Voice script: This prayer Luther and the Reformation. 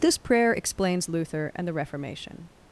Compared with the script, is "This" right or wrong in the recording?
right